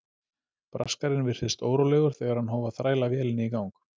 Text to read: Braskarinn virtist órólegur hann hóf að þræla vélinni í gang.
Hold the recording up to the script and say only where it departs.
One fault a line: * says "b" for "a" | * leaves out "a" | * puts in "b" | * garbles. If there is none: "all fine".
* puts in "þegar"